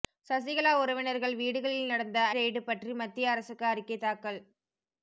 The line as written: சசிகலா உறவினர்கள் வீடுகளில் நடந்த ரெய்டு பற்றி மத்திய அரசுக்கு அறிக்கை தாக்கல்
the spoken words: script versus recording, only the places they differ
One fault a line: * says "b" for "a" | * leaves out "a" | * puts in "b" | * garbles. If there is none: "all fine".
all fine